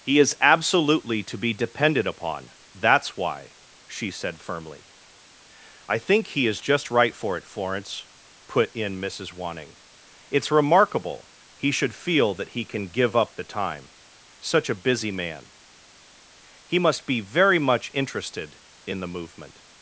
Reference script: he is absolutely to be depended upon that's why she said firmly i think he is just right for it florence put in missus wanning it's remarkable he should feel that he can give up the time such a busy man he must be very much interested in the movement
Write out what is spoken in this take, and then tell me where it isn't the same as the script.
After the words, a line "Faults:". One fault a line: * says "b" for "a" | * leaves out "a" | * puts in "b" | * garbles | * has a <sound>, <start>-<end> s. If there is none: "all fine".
he is absolutely to be depended upon that's why she said firmly i think he is just right for it florence put in missus wanning it's remarkable he should feel that he can give up the time such a busy man he must be very much interested in the movement
Faults:
all fine